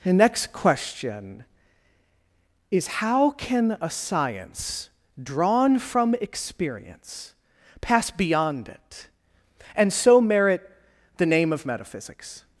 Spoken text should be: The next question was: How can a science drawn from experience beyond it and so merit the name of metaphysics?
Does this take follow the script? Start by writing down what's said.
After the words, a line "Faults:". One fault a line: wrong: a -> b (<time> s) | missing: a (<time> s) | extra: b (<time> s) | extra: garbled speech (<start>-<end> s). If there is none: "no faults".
The next question is: How can a science drawn from experience pass beyond it and so merit the name of metaphysics?
Faults:
wrong: was -> is (2.7 s)
extra: pass (7.8 s)